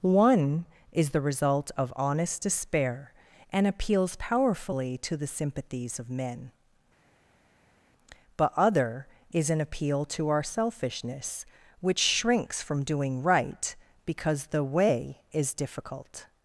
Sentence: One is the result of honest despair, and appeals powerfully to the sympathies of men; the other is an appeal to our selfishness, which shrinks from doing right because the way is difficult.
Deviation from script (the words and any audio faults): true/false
true